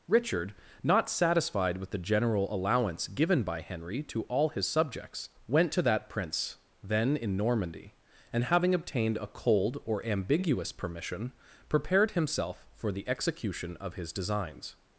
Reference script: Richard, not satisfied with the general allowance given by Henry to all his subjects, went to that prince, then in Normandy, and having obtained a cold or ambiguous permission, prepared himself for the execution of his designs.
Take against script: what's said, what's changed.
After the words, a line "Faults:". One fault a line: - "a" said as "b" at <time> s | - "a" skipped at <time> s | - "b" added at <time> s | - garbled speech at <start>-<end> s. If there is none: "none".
Richard, not satisfied with the general allowance given by Henry to all his subjects, went to that prince, then in Normandy, and having obtained a cold or ambiguous permission, prepared himself for the execution of his designs.
Faults:
none